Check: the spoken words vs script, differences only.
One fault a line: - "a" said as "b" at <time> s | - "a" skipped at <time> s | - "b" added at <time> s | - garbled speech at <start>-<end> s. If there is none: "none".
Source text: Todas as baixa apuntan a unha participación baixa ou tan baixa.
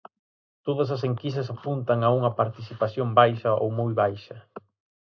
- "baixa" said as "enquisas" at 1.1 s
- "tan" said as "moi" at 3.8 s